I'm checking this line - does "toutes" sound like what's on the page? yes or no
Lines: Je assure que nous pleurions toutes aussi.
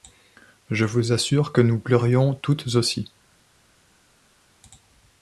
yes